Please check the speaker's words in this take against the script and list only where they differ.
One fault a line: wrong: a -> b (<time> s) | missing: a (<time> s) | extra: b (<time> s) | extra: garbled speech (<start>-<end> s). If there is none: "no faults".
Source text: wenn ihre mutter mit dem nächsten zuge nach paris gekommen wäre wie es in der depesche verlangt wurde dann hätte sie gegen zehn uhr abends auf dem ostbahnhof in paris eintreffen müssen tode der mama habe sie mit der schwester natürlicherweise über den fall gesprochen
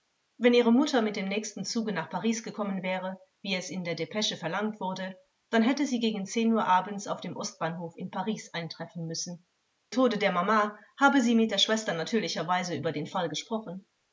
no faults